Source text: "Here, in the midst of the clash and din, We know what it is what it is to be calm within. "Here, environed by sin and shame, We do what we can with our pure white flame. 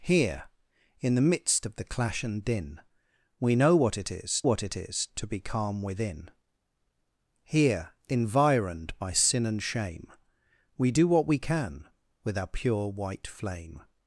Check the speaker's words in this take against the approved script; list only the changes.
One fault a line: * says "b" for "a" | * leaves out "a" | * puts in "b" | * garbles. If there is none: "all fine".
all fine